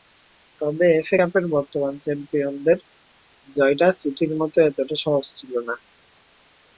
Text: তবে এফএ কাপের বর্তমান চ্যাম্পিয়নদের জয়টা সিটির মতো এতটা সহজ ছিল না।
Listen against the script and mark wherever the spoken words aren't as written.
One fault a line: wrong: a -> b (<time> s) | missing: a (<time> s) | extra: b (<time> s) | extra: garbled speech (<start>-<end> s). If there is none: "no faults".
no faults